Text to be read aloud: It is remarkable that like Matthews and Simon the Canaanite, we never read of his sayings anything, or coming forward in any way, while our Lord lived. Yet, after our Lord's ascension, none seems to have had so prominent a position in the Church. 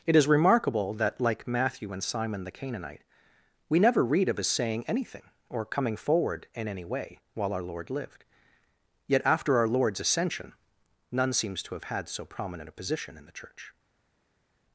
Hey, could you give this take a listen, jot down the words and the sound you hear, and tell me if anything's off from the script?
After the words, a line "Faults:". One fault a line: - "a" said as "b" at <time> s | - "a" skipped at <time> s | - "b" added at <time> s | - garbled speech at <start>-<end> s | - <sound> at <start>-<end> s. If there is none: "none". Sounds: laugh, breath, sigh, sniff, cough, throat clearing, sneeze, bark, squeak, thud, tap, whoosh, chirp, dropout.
It is remarkable that like Matthew and Simon the Canaanite, we never read of his saying anything, or coming forward in any way, while our Lord lived. Yet, after our Lord's ascension, none seems to have had so prominent a position in the Church.
Faults:
- "Matthews" said as "Matthew" at 1.5 s
- "sayings" said as "saying" at 4.5 s